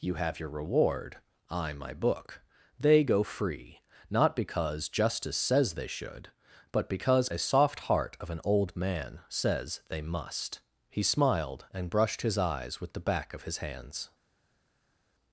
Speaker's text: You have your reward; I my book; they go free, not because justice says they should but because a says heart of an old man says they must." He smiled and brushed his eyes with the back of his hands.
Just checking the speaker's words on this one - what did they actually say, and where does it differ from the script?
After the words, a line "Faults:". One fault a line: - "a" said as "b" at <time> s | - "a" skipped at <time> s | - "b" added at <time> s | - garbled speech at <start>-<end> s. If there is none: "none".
You have your reward; I my book; they go free, not because justice says they should but because a soft heart of an old man says they must." He smiled and brushed his eyes with the back of his hands.
Faults:
- "says" said as "soft" at 7.4 s